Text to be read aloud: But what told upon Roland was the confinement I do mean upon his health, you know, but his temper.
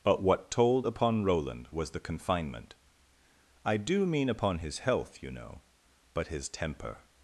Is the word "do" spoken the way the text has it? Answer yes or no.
yes